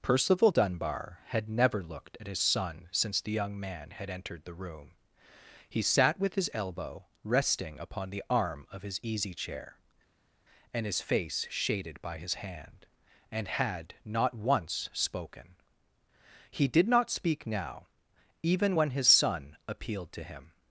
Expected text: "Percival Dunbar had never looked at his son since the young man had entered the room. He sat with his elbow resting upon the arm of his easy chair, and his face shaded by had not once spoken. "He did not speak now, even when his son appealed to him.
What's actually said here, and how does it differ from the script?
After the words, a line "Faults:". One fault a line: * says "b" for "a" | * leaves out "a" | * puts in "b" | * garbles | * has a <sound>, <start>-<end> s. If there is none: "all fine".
"Percival Dunbar had never looked at his son since the young man had entered the room. He sat with his elbow resting upon the arm of his easy chair, and his face shaded by his hand, and had not once spoken. "He did not speak now, even when his son appealed to him.
Faults:
* puts in "his hand and"